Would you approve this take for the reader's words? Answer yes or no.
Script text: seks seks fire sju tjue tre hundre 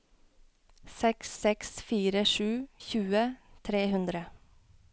yes